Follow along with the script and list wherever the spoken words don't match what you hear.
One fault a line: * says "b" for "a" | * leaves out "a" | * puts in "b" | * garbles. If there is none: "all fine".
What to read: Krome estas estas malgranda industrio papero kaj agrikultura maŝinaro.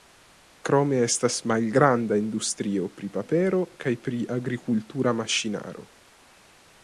* leaves out "estas"
* puts in "pri"
* puts in "pri"